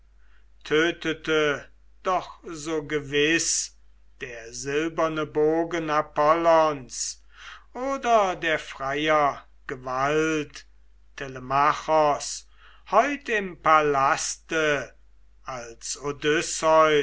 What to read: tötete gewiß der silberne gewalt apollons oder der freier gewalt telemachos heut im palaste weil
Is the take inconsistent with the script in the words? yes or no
yes